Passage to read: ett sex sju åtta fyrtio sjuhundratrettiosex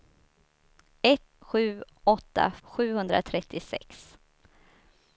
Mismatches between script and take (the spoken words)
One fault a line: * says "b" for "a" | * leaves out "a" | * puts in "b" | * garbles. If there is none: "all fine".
* leaves out "sex"
* leaves out "fyrtio"